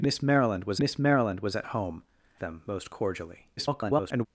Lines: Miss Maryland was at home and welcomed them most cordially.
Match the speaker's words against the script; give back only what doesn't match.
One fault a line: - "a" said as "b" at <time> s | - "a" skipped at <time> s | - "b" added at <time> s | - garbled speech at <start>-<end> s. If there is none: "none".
- "miss Maryland was" added at 0.8 s
- "and welcomed" skipped at 2.0 s
- garbled speech at 3.6-4.3 s